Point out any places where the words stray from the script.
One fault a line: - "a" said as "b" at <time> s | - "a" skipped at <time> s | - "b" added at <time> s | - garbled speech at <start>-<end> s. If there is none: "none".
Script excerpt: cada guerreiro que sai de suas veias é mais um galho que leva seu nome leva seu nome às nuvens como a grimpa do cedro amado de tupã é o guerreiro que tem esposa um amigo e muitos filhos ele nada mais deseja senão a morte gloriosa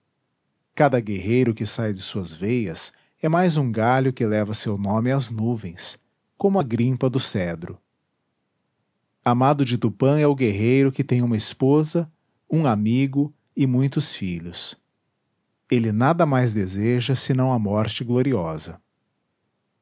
- "leva seu nome" skipped at 5.1 s
- "uma" added at 11.2 s